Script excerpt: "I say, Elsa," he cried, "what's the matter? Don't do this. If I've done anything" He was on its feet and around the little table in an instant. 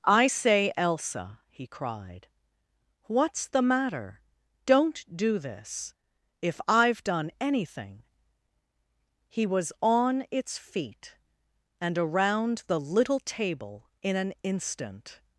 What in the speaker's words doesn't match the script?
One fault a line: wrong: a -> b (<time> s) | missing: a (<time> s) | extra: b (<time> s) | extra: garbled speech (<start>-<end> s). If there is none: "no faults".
no faults